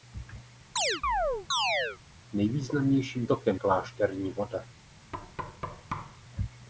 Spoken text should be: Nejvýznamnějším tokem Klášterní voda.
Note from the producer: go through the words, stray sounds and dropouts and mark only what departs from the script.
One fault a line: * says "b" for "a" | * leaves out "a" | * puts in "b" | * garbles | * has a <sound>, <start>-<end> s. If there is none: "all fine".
* has a chirp, 0.8-2.0 s
* has a thud, 5.1-6.2 s